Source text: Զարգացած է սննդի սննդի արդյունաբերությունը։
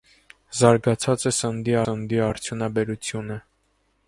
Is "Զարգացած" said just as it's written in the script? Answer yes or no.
yes